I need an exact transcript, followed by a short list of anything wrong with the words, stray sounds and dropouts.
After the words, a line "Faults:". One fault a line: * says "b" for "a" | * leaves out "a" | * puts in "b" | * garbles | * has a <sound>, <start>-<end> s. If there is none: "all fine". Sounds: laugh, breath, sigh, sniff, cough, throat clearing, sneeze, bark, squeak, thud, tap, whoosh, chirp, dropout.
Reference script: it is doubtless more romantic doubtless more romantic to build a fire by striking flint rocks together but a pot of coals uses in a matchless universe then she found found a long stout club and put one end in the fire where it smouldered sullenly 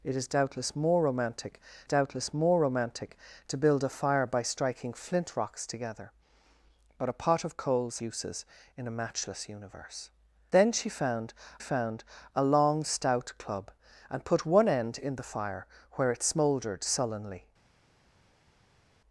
it is doubtless more romantic doubtless more romantic to build a fire by striking flint rocks together but a pot of coals uses in a matchless universe then she found found a long stout club and put one end in the fire where it smouldered sullenly
Faults:
all fine